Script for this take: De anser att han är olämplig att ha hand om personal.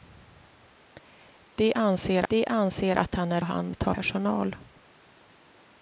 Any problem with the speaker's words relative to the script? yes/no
yes